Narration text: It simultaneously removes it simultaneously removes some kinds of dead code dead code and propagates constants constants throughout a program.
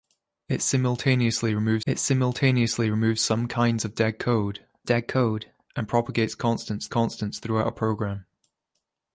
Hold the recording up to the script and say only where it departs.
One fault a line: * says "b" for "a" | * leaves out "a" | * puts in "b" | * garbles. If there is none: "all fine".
all fine